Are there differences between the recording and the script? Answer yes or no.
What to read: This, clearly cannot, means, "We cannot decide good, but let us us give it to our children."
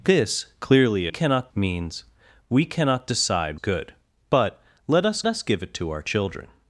no